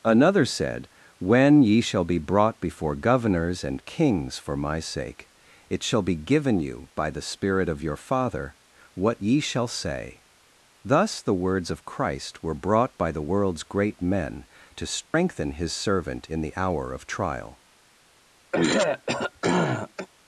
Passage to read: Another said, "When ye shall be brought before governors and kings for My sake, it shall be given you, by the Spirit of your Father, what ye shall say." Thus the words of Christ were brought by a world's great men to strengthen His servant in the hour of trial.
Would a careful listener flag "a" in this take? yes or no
yes